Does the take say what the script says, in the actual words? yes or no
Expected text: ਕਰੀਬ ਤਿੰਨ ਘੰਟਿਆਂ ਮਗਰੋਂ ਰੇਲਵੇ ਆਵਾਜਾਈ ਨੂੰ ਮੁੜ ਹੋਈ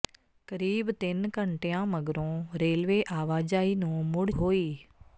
yes